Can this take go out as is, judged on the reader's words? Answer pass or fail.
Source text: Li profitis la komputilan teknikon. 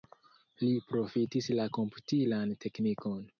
pass